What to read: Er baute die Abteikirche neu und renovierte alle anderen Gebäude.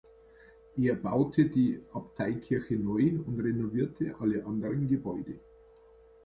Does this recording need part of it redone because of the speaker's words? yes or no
no